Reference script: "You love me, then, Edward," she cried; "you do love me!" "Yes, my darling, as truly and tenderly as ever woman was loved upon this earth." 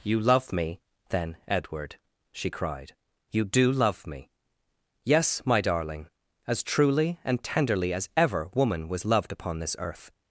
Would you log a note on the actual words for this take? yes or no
no